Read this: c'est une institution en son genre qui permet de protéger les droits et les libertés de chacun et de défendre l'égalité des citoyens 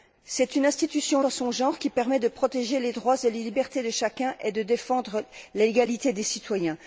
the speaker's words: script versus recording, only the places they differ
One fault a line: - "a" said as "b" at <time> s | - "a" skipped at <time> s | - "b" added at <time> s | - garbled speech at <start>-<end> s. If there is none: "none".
none